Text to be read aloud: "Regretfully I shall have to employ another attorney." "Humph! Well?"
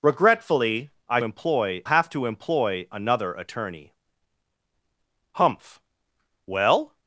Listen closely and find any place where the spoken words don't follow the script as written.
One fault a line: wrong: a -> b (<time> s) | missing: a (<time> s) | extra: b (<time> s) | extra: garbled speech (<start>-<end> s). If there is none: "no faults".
wrong: shall -> employ (1.2 s)